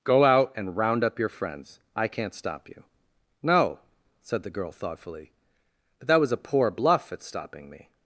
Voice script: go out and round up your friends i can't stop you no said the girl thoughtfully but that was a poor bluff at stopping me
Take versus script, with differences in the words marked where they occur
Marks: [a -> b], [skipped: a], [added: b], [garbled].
go out and round up your friends i can't stop you no said the girl thoughtfully but that was a poor bluff at stopping me